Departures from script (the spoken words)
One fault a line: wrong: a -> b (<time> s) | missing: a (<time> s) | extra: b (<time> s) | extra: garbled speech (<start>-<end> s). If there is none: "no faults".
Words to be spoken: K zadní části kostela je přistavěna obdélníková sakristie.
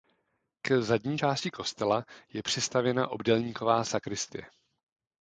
no faults